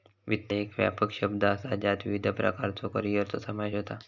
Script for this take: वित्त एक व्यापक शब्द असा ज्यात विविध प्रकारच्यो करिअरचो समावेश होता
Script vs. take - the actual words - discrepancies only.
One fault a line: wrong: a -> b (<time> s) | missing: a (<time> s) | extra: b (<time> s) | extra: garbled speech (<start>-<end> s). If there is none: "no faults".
no faults